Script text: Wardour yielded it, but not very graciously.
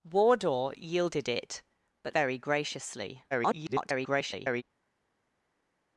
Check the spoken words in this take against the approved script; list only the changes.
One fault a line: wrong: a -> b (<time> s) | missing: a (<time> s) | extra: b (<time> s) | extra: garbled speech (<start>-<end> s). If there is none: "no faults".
missing: not (2.1 s)
extra: garbled speech (3.3-4.6 s)